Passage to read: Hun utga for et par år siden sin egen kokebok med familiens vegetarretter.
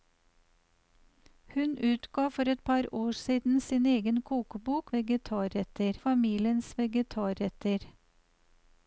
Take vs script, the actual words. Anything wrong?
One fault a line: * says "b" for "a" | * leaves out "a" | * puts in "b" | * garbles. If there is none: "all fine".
* says "vegetarretter" for "med"